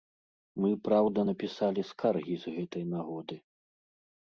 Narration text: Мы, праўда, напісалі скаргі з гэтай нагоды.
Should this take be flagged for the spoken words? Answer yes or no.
no